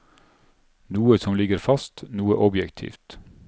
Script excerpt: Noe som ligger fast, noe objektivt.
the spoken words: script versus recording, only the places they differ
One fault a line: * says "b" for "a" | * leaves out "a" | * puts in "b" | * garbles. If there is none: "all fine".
all fine